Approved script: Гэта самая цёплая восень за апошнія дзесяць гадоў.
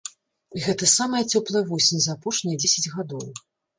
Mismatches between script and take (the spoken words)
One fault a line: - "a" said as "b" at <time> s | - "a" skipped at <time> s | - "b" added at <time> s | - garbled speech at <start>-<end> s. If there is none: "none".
none